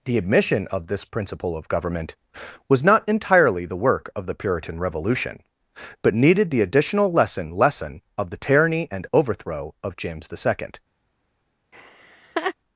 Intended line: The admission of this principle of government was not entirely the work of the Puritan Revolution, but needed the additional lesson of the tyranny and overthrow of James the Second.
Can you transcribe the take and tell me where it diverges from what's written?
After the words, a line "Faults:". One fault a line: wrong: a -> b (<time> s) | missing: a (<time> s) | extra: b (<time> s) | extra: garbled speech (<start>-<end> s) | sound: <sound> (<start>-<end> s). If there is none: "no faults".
The admission of this principle of government was not entirely the work of the Puritan Revolution, but needed the additional lesson lesson of the tyranny and overthrow of James the Second.
Faults:
extra: lesson (7.5 s)
sound: laugh (11.7-12.5 s)